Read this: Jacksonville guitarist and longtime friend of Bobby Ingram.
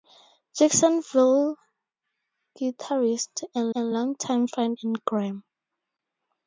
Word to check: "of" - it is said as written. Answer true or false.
false